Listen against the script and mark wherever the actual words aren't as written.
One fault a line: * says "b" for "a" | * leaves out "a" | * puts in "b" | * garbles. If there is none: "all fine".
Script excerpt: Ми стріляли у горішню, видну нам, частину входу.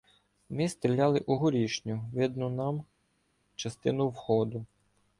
all fine